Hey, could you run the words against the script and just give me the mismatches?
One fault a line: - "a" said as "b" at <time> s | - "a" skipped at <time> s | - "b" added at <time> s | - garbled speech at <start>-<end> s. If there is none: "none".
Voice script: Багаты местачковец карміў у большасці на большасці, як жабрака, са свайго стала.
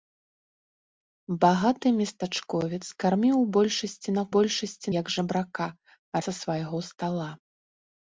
none